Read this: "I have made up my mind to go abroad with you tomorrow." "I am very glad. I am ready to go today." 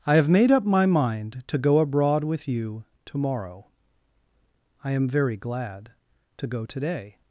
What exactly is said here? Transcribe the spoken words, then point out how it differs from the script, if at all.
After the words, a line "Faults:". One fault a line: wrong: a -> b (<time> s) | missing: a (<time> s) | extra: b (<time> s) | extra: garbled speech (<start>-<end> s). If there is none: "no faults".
"I have made up my mind to go abroad with you tomorrow." "I am very glad. to go today."
Faults:
missing: I am ready (5.9 s)